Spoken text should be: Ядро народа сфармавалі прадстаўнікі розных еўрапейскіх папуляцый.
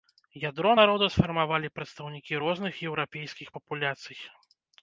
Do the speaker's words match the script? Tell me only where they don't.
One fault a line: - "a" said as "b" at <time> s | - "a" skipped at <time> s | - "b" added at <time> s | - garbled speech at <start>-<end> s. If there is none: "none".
none